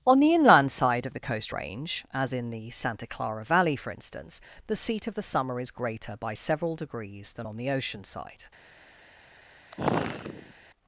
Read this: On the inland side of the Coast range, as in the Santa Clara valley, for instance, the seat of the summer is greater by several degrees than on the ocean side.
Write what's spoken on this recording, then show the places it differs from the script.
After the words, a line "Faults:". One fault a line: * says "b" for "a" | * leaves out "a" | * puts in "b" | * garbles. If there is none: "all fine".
On the inland side of the Coast range, as in the Santa Clara valley, for instance, the seat of the summer is greater by several degrees than on the ocean side.
Faults:
all fine